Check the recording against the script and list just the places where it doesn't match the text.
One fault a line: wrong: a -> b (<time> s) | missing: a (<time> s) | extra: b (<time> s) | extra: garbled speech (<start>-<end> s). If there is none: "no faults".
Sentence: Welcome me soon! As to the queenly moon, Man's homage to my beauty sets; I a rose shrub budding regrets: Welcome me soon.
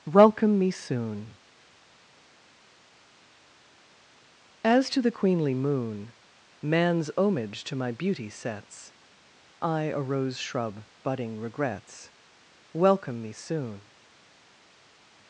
no faults